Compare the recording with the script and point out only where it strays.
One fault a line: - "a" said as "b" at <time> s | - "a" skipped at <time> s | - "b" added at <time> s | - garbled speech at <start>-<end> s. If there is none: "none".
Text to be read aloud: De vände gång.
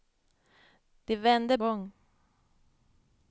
none